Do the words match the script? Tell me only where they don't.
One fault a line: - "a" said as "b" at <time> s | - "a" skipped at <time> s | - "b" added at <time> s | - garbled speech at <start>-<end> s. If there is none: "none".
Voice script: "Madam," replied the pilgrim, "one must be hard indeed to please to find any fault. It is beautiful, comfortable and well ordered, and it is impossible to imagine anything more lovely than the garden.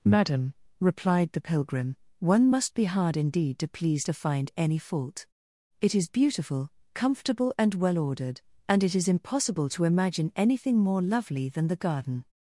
none